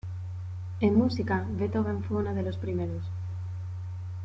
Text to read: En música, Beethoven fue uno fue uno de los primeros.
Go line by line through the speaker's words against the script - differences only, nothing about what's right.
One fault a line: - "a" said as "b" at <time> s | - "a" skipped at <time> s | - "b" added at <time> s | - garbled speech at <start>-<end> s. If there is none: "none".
- "fue uno" skipped at 2.3 s